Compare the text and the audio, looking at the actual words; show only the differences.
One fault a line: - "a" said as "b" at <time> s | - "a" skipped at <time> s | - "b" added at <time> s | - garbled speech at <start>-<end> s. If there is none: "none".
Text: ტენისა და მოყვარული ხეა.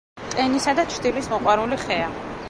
- "ჩრდილის" added at 0.9 s